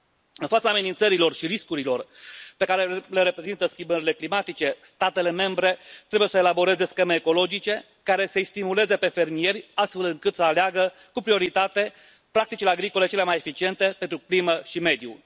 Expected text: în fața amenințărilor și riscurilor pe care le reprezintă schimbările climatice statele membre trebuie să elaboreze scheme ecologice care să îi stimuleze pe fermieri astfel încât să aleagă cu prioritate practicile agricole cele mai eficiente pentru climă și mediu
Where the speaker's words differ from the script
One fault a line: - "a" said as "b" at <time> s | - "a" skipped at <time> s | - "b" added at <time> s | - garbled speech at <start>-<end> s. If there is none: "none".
none